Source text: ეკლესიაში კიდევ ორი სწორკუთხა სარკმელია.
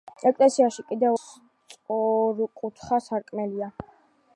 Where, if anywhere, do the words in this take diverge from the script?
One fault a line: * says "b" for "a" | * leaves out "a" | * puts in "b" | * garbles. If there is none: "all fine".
* leaves out "ორი"